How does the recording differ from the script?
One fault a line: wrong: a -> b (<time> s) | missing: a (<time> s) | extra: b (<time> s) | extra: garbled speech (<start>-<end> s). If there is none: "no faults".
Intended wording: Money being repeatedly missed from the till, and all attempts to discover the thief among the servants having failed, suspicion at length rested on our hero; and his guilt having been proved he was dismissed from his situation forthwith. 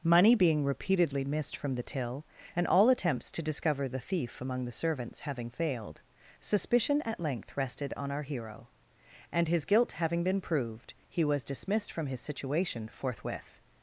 no faults